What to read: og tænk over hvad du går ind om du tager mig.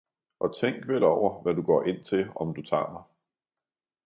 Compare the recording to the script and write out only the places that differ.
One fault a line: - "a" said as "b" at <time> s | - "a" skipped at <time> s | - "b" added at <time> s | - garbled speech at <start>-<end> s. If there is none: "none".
- "vel" added at 0.9 s
- "til" added at 2.0 s